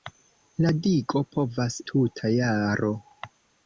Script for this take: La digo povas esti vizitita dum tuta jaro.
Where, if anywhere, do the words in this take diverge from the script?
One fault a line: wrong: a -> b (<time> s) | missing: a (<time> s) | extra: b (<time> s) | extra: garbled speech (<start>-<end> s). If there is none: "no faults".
missing: esti vizitita dum (1.8 s)